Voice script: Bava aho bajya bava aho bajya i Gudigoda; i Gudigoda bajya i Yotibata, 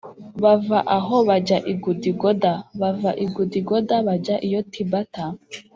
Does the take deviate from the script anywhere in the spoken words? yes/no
yes